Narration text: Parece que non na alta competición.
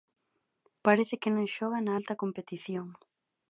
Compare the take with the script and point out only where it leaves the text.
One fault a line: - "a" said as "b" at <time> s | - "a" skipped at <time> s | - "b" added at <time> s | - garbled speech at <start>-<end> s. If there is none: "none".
- "xoga" added at 1.6 s